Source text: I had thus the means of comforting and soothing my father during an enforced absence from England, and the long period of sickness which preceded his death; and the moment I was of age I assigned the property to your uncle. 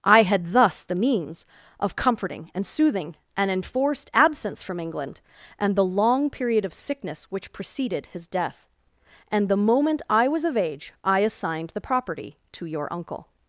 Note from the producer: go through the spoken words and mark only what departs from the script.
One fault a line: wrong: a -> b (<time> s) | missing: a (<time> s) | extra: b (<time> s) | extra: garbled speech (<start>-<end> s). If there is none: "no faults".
missing: my father during (3.1 s)